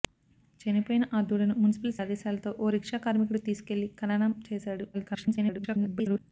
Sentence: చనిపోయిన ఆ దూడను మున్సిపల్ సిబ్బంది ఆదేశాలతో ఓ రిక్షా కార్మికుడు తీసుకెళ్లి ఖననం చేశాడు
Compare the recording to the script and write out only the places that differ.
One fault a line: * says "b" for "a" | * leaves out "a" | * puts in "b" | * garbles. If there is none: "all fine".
* leaves out "సిబ్బంది"
* garbles